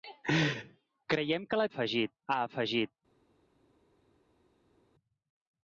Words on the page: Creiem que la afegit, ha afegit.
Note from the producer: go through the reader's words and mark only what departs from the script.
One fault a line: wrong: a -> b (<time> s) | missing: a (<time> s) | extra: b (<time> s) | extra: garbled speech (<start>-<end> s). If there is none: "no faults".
no faults